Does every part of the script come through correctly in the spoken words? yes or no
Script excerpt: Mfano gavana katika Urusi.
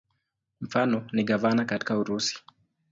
no